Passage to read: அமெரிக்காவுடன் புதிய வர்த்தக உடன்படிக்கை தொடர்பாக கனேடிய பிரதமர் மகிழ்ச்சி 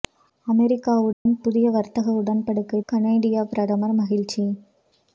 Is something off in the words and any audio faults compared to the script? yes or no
yes